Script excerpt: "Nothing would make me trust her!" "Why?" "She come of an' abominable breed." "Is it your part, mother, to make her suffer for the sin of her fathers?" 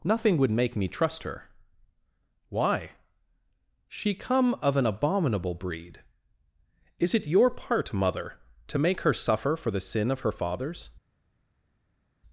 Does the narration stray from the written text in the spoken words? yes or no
no